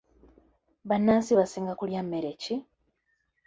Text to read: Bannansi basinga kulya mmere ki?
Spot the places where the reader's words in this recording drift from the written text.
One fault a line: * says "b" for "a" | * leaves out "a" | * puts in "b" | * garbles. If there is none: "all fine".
all fine